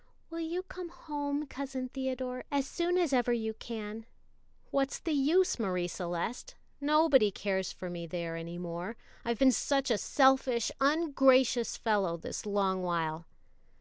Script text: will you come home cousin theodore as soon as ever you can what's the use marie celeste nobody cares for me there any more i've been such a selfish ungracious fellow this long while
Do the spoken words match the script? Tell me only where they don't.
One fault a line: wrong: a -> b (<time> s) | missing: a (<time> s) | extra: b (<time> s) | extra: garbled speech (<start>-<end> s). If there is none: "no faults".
no faults